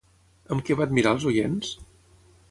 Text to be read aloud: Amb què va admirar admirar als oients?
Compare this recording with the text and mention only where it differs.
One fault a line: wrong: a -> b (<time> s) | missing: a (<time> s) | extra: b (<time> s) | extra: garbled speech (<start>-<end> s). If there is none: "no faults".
missing: admirar (1.1 s)